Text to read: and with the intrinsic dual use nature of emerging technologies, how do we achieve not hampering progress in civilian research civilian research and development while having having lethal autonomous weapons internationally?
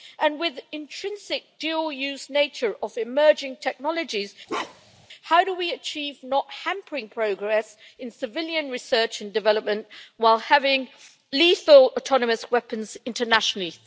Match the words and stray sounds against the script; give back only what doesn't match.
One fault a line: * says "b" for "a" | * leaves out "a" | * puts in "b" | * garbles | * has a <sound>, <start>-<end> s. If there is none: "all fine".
* has a bark, 4.5-5.1 s
* leaves out "civilian research"
* leaves out "having"